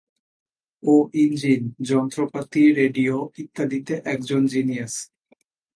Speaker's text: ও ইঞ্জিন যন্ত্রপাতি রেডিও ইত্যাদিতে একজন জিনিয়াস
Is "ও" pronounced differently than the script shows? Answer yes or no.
no